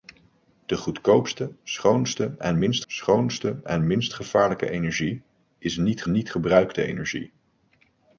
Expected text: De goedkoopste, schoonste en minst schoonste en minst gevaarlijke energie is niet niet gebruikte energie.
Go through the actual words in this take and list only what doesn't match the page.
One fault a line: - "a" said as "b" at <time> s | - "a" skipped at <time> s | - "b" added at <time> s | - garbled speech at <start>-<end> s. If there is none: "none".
none